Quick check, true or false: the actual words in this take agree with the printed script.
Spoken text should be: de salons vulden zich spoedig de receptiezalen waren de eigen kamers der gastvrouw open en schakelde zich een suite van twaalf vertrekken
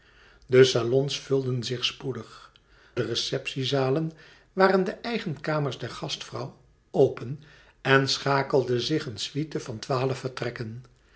true